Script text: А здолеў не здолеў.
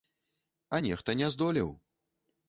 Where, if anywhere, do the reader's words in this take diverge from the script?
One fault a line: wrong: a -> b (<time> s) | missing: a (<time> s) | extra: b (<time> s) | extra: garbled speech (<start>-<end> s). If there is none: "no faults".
wrong: здолеў -> нехта (0.8 s)